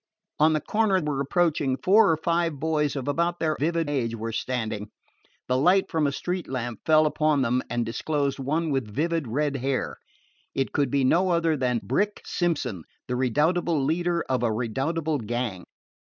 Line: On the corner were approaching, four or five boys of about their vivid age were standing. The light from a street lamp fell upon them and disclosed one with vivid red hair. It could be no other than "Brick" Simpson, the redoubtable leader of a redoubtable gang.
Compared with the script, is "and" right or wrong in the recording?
right